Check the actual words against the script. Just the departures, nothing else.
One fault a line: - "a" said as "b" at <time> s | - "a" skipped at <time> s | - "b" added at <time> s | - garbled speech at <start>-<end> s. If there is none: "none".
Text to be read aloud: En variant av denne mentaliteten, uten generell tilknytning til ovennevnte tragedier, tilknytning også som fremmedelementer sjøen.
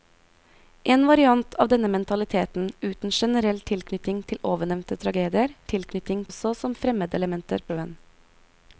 none